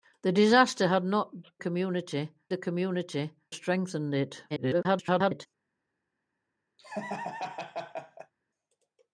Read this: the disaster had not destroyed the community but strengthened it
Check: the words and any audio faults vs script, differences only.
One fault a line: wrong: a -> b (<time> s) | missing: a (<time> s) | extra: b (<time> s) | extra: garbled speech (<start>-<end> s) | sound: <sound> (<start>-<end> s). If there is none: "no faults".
wrong: destroyed -> community (1.6 s)
missing: but (3.3 s)
extra: garbled speech (4.5-5.5 s)
sound: laugh (6.8-8.3 s)